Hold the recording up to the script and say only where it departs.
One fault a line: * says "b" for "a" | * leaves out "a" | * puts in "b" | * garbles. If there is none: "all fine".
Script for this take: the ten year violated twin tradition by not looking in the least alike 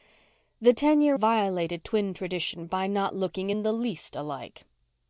all fine